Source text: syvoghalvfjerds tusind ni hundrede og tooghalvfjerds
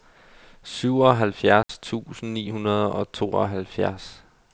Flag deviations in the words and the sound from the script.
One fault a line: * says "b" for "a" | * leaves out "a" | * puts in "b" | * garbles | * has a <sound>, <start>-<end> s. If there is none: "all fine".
* has a dropout, 1.6-1.7 s